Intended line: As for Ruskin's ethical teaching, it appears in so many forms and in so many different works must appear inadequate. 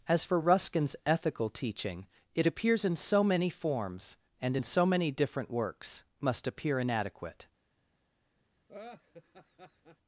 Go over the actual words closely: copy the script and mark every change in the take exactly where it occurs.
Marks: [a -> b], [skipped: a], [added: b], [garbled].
As for Ruskin's ethical teaching, it appears in so many forms and in so many different works must appear inadequate.